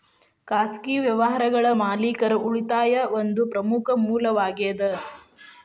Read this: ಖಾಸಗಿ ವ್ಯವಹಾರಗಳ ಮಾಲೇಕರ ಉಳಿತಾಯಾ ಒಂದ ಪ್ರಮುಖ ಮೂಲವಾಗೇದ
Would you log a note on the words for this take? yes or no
no